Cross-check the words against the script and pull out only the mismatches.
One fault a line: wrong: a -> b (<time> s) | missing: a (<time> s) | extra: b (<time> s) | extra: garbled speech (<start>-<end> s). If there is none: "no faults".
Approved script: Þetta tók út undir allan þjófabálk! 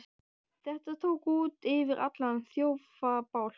wrong: undir -> yfir (1.8 s)